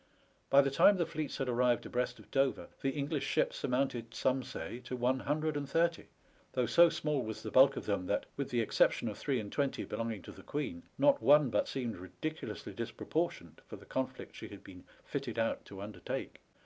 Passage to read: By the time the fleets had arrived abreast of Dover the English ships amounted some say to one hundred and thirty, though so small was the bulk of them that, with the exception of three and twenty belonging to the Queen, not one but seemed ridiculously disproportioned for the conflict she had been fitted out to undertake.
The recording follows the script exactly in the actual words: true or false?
true